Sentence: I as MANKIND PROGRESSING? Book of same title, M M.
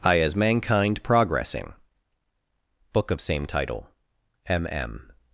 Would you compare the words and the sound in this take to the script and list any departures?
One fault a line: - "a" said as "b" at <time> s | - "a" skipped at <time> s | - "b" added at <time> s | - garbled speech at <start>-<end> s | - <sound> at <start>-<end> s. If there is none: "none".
none